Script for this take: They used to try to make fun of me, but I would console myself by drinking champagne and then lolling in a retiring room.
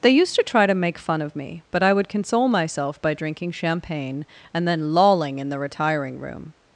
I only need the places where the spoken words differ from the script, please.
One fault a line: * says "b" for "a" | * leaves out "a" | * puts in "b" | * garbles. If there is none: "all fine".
* says "the" for "a"